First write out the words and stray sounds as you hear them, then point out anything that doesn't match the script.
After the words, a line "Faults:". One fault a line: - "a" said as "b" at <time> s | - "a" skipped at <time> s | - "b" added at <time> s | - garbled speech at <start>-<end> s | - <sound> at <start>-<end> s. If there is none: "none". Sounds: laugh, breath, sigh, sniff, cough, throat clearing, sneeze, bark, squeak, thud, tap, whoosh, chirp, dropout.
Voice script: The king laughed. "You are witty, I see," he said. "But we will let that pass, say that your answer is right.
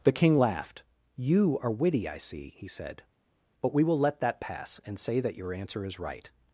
The king laughed. "You are witty, I see," he said. "But we will let that pass, and say that your answer is right.
Faults:
- "and" added at 4.8 s